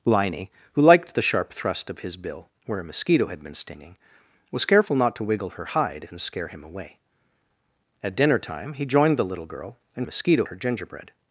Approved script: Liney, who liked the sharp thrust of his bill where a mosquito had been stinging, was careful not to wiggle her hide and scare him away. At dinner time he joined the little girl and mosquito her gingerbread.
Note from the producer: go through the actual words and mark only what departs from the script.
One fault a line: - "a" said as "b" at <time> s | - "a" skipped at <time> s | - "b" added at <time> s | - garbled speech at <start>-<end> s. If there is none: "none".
none